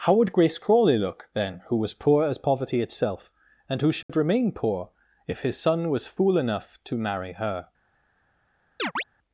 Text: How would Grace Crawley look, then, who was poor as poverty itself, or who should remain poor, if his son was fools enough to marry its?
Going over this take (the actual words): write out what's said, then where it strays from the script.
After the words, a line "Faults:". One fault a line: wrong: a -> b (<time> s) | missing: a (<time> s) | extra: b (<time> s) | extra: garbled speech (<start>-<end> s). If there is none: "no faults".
How would Grace Crawley look, then, who was poor as poverty itself, and who should remain poor, if his son was fool enough to marry her?
Faults:
wrong: or -> and (3.7 s)
wrong: fools -> fool (6.1 s)
wrong: its -> her (7.3 s)